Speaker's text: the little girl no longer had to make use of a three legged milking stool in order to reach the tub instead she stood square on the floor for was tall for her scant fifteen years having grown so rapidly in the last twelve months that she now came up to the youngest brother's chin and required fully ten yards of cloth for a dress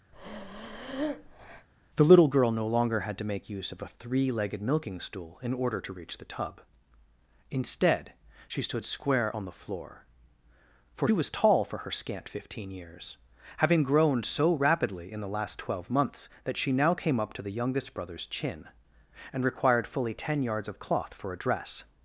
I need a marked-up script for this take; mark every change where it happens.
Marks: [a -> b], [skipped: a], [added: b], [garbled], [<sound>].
[breath] the little girl no longer had to make use of a three legged milking stool in order to reach the tub instead she stood square on the floor for was tall for her scant fifteen years having grown so rapidly in the last twelve months that she now came up to the youngest brother's chin and required fully ten yards of cloth for a dress